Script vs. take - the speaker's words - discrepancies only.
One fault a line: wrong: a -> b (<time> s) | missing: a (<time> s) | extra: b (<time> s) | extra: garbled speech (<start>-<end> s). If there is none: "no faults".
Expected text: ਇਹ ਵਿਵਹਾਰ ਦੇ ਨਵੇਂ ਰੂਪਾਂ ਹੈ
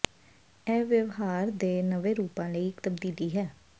extra: ਲਈ ਇੱਕ ਤਬਦੀਲੀ (2.5 s)